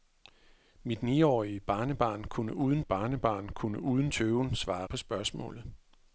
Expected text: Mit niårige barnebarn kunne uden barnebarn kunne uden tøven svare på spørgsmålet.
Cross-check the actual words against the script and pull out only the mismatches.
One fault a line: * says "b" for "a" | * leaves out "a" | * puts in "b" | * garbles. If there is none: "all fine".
all fine